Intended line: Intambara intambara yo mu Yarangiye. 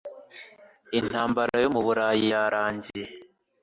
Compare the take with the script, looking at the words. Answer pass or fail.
fail